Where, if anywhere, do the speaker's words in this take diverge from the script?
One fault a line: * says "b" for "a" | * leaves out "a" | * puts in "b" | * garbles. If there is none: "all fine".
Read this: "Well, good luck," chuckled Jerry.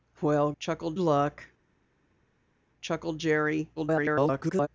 * says "chuckled" for "good"
* garbles